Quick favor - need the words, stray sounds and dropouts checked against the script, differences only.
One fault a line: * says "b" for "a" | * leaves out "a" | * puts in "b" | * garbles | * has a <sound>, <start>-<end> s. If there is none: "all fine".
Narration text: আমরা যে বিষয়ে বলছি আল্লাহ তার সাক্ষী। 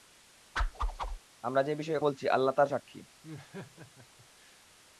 * has a whoosh, 0.6-1.2 s
* has a laugh, 3.2-4.6 s